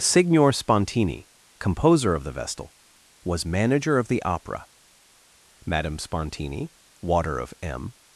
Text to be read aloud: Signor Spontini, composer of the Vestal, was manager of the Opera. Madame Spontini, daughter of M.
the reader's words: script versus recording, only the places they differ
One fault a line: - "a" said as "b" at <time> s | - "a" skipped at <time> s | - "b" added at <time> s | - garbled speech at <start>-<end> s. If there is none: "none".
- "daughter" said as "water" at 7.0 s